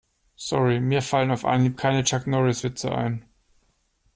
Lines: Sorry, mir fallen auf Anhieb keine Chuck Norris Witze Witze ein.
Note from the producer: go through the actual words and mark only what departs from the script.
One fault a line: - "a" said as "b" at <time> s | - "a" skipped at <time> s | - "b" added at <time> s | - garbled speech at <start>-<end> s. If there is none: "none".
- "Witze" skipped at 2.9 s